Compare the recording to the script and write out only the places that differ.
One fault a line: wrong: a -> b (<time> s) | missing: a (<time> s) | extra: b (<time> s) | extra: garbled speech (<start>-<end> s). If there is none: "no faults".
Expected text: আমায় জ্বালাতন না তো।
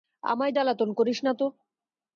extra: করিস (0.9 s)